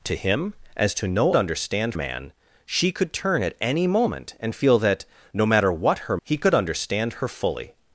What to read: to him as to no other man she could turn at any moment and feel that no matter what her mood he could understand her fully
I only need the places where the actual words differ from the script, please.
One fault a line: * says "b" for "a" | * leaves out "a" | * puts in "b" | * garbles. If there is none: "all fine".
* says "understand" for "other"
* leaves out "mood"